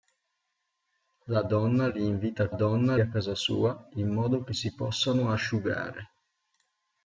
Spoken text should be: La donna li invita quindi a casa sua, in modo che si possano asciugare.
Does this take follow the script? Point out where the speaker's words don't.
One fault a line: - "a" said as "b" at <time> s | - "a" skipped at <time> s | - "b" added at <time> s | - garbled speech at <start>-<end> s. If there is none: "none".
- "quindi" said as "donna" at 2.5 s